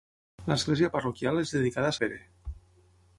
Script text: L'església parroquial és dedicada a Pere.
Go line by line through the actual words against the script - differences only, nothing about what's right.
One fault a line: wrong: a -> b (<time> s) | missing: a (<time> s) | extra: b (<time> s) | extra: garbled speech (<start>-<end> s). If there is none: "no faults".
no faults